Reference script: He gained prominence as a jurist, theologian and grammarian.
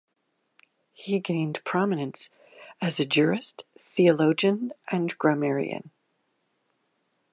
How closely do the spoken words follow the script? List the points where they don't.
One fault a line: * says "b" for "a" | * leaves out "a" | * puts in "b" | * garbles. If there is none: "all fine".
all fine